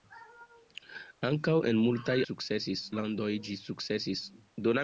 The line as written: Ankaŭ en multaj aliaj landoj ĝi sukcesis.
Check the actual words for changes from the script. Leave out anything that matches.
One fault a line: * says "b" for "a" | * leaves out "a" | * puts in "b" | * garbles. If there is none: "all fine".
* says "sukcesis" for "aliaj"